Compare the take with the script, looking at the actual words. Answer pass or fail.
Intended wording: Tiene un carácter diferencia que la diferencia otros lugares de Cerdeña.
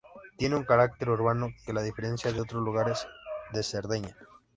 fail